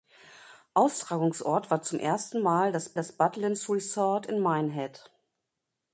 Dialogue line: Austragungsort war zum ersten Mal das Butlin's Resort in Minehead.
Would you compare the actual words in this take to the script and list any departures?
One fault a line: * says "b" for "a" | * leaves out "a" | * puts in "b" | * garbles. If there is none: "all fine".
* puts in "das"